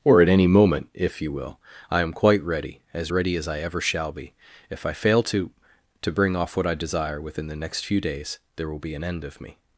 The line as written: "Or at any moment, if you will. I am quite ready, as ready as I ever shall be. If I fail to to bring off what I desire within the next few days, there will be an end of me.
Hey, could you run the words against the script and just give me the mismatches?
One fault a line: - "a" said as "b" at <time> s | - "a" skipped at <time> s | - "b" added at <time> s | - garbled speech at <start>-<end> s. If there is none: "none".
none